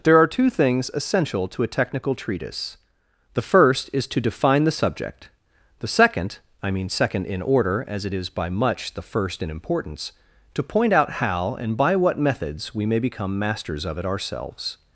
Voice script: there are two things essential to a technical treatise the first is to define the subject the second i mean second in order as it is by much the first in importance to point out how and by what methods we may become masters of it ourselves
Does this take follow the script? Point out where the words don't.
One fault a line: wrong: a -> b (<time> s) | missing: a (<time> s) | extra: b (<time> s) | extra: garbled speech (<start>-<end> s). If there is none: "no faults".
no faults